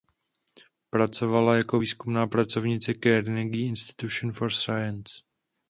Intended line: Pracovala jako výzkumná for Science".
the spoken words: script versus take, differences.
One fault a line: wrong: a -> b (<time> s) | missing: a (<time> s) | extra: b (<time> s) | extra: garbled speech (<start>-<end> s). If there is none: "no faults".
extra: pracovnice Carnegie Institution (2.3 s)